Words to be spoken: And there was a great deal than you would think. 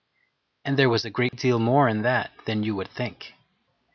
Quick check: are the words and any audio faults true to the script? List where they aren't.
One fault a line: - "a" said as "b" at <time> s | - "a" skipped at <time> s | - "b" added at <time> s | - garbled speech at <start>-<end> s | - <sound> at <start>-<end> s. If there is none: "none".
- dropout at 1.3-1.3 s
- "more in that" added at 1.6 s